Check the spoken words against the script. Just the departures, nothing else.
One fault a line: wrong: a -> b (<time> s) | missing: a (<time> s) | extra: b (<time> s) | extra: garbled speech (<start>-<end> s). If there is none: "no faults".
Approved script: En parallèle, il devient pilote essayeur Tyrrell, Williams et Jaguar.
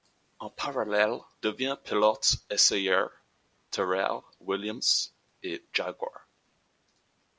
missing: il (1.2 s)